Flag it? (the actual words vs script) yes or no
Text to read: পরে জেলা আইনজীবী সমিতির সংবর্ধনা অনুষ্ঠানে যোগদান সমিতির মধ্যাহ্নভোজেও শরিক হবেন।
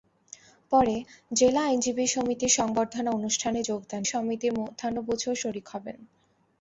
no